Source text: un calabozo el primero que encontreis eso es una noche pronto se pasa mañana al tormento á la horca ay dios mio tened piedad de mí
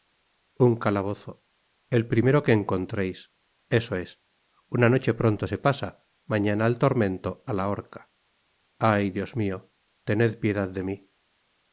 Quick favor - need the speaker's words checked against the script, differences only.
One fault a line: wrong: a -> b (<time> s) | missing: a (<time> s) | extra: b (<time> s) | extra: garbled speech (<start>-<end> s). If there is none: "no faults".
no faults